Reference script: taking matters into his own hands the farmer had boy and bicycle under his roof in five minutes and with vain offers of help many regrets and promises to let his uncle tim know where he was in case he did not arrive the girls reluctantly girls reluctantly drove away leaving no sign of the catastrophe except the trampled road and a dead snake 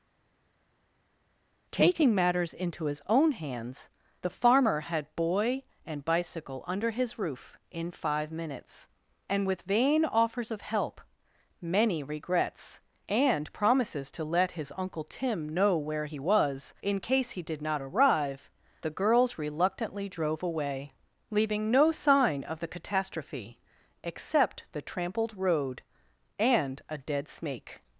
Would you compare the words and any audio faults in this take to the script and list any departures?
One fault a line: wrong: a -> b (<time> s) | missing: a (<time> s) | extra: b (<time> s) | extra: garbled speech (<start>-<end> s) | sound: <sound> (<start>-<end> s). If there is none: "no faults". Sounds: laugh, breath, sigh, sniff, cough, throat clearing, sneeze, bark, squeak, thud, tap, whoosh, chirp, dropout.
missing: girls reluctantly (20.1 s)